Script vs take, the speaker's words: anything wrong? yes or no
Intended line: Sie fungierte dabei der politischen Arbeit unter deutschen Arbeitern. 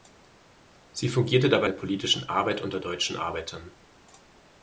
no